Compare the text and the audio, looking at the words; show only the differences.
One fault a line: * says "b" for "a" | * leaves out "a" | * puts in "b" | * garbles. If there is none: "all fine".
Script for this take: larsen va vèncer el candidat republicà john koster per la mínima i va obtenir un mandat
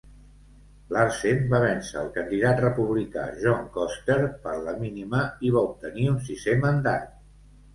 * puts in "sisè"